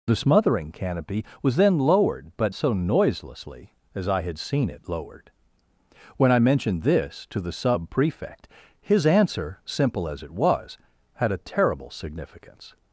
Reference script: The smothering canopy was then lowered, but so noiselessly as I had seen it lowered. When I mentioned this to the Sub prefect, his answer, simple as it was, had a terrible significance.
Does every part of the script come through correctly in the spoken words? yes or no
yes